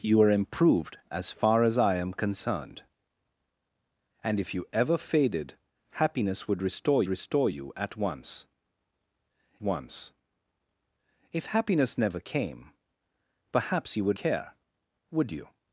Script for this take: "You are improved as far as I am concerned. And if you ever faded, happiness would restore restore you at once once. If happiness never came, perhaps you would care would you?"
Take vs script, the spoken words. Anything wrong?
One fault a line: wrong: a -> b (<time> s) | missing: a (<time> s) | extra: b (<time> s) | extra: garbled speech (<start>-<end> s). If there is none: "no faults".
no faults